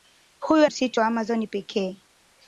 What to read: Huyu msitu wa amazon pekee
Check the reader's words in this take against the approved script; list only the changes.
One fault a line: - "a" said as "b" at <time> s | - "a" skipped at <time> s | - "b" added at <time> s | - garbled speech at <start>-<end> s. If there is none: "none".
none